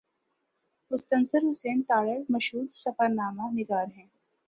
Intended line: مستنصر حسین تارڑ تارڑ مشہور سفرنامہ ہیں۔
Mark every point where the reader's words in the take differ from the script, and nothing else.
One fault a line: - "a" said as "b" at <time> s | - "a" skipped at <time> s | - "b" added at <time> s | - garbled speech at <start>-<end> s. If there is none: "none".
- "تارڑ" skipped at 2.2 s
- "نگار" added at 3.5 s